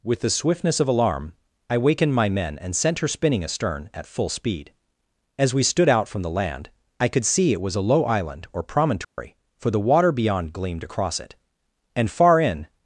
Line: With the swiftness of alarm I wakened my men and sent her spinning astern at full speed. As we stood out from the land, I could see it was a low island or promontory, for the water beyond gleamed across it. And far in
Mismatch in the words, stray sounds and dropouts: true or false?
true